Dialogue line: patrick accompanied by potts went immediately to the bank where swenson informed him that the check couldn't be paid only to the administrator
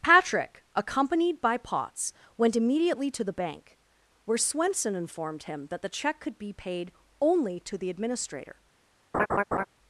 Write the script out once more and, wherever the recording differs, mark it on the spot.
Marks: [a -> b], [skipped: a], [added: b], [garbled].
patrick accompanied by potts went immediately to the bank where swenson informed him that the check [couldn't -> could] be paid only to the administrator